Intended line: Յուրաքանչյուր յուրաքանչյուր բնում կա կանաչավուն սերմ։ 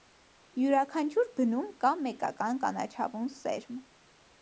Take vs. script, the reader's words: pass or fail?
fail